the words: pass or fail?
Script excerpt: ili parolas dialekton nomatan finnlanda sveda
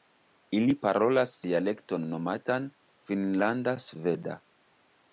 pass